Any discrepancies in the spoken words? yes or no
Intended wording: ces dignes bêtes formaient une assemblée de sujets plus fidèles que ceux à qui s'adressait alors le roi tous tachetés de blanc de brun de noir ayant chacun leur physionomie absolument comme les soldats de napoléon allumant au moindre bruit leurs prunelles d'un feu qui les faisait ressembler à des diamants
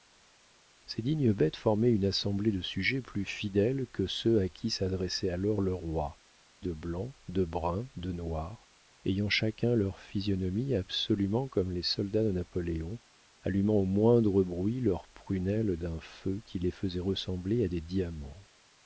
yes